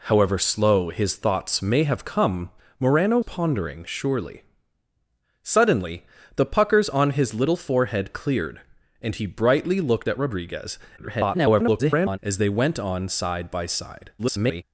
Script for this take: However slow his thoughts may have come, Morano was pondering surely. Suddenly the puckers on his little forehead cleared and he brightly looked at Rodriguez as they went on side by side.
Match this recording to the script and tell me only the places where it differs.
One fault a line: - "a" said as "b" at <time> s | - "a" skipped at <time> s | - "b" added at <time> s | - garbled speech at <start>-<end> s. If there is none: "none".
- "was" skipped at 3.2 s
- garbled speech at 11.0-12.2 s
- garbled speech at 14.2-14.6 s